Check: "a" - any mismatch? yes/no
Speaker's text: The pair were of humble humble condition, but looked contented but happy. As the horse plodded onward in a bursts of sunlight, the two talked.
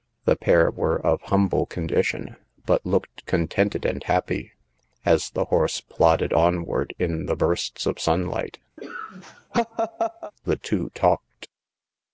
yes